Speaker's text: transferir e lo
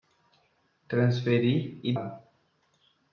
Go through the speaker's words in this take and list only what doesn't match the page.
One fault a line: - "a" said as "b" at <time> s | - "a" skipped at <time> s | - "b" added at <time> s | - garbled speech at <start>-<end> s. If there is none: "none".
none